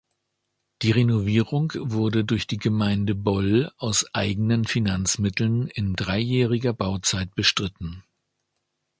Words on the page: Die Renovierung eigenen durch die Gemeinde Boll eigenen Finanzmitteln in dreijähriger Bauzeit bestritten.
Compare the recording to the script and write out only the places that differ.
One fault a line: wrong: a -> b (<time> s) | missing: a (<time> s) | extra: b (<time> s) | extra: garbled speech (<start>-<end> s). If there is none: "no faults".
wrong: eigenen -> wurde (1.8 s)
extra: aus (3.8 s)